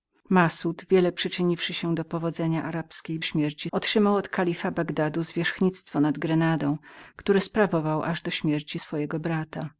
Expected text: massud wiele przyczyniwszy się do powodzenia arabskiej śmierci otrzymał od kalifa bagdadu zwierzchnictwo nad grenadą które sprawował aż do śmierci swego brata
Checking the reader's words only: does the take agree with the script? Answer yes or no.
yes